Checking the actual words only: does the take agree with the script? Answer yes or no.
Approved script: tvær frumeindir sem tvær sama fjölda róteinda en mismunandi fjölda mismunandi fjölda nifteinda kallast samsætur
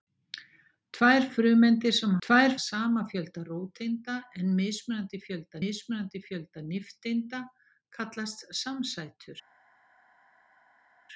yes